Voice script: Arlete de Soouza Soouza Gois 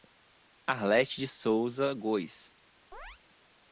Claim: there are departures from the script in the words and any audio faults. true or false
true